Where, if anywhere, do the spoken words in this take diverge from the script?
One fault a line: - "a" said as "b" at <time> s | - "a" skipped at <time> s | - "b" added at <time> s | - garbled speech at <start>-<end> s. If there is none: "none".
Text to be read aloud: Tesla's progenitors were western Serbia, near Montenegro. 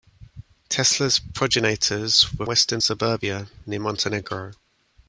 none